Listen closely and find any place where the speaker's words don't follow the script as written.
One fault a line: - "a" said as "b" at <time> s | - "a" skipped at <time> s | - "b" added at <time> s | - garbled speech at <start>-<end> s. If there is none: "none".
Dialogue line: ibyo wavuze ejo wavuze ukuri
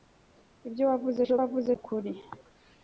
none